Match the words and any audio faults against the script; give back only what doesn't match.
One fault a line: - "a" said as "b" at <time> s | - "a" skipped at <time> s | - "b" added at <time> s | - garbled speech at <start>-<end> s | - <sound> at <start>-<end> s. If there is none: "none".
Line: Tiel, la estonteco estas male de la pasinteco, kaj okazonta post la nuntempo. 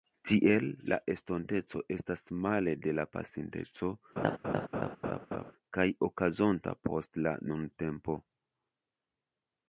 - laugh at 4.2-5.5 s